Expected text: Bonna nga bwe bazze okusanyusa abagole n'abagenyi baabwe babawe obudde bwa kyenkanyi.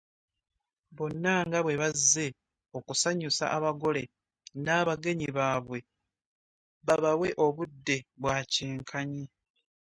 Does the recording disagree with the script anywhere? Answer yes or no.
no